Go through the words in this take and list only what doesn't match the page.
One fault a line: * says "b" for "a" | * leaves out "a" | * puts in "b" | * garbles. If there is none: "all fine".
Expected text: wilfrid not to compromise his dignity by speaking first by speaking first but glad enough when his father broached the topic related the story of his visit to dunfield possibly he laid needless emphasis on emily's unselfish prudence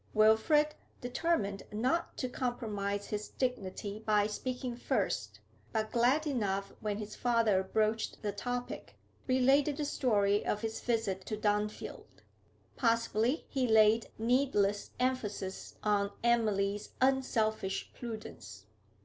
* puts in "determined"
* leaves out "by speaking first"